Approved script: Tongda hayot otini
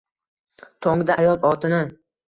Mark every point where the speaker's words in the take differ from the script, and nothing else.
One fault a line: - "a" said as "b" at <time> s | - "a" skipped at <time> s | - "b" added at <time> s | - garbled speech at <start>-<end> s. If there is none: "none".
none